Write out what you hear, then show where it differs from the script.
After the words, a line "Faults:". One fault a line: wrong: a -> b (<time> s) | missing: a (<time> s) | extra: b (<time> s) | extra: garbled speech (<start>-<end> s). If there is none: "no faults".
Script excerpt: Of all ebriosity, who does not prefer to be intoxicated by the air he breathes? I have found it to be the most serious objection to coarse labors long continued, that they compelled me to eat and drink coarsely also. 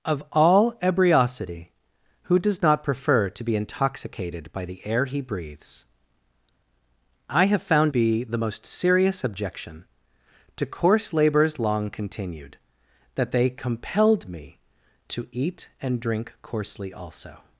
Of all ebriosity, who does not prefer to be intoxicated by the air he breathes? I have found be the most serious objection to coarse labors long continued, that they compelled me to eat and drink coarsely also.
Faults:
missing: it to (7.9 s)